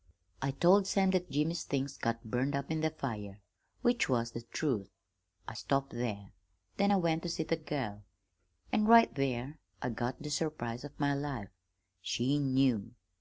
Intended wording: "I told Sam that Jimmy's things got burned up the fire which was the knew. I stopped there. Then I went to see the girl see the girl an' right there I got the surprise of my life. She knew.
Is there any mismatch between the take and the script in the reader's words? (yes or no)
yes